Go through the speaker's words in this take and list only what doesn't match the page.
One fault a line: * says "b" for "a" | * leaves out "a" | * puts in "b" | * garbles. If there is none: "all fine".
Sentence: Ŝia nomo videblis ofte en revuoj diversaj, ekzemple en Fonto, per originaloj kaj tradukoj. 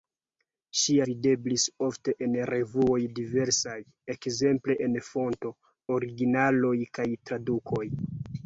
* leaves out "nomo"
* leaves out "per"